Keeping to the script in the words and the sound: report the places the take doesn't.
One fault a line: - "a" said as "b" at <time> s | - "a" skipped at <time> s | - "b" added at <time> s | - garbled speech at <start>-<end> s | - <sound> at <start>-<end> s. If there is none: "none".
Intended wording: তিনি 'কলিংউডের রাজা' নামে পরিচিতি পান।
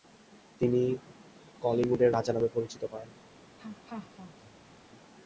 - laugh at 3.6-4.8 s